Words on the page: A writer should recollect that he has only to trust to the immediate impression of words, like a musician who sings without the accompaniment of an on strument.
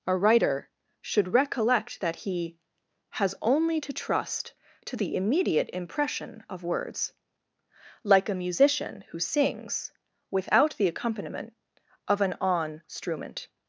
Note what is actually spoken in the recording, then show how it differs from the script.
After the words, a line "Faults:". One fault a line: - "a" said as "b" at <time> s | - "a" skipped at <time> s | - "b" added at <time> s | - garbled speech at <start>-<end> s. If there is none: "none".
A writer should recollect that he has only to trust to the immediate impression of words, like a musician who sings without the accompaniment of an on strument.
Faults:
none